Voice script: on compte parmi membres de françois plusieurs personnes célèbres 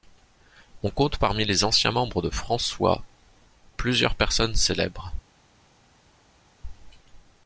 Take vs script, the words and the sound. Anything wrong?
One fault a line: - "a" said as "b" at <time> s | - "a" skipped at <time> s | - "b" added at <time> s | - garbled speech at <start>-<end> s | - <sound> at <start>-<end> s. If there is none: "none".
- "les anciens" added at 1.4 s